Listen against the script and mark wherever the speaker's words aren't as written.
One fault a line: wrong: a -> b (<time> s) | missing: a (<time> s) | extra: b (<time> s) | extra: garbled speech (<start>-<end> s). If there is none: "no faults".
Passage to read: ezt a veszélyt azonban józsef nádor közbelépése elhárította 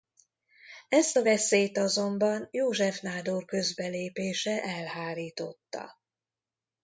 no faults